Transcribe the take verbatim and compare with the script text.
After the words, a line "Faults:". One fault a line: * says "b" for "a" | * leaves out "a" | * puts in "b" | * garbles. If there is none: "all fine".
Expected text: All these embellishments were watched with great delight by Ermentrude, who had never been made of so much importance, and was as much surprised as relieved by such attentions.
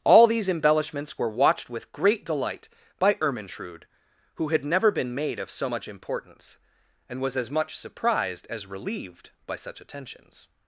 All these embellishments were watched with great delight by Ermentrude, who had never been made of so much importance, and was as much surprised as relieved by such attentions.
Faults:
all fine